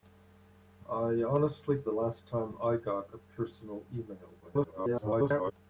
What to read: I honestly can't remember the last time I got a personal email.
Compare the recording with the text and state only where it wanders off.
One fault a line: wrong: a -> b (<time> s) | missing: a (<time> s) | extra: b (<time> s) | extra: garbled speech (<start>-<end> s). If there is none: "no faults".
missing: can't remember (1.8 s)
extra: garbled speech (4.4-5.5 s)